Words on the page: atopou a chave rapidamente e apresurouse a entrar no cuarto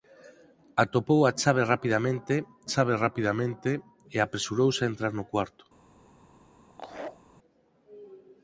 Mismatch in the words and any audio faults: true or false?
true